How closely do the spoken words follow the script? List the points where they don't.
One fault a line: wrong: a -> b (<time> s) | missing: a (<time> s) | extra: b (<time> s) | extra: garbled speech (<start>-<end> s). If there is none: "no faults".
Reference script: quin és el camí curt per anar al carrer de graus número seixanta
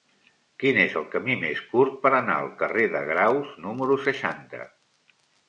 extra: més (1.4 s)